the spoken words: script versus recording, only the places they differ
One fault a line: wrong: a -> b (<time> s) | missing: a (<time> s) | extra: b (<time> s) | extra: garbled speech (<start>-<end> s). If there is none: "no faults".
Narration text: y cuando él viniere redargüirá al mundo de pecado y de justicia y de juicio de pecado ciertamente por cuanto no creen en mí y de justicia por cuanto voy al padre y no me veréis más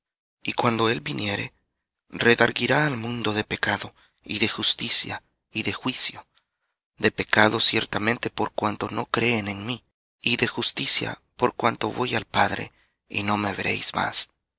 no faults